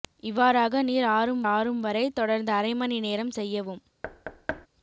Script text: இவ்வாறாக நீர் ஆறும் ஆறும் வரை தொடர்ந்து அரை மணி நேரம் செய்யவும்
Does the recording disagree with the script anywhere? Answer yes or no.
no